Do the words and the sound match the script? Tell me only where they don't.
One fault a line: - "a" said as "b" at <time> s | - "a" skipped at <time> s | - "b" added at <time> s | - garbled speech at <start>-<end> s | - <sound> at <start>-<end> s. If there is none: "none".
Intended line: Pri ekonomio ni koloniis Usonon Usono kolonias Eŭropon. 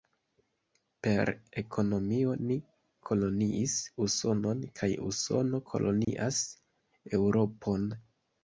- "Pri" said as "Per" at 1.1 s
- "kaj" added at 4.8 s
- dropout at 6.0-6.1 s